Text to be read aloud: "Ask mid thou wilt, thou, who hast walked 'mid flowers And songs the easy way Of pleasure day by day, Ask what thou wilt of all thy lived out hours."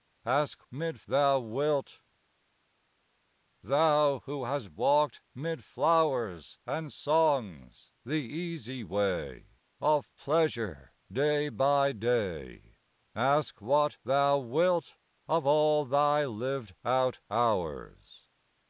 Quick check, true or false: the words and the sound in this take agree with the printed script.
true